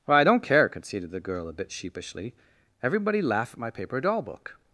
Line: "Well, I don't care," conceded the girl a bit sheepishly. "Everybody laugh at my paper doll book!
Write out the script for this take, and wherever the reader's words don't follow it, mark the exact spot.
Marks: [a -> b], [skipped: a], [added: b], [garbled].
"Well, I don't care," conceded the girl a bit sheepishly. "Everybody laugh at my paper doll book!